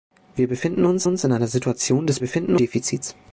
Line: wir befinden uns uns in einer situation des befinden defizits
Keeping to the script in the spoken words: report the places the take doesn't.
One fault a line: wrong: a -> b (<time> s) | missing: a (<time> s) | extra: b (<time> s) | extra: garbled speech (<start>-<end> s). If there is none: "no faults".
no faults